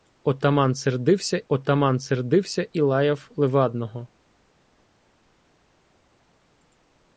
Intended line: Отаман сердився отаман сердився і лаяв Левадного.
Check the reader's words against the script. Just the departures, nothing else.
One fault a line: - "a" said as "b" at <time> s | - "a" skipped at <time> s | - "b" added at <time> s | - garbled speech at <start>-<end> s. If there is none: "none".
none